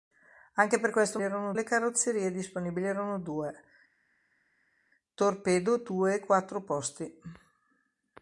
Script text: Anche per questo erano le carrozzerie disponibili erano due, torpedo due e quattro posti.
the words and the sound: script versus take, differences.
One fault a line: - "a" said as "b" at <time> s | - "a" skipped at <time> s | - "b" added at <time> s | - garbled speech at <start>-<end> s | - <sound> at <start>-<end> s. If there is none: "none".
none